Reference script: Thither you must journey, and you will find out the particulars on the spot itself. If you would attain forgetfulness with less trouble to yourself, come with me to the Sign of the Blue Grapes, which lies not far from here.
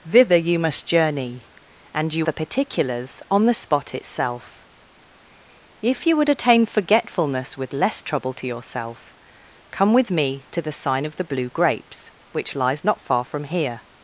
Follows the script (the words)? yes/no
no